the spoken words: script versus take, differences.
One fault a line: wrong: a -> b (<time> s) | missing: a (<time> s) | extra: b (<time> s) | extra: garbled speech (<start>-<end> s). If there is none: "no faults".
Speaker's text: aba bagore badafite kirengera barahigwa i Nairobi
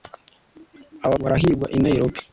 missing: bagore badafite kirengera (1.1 s)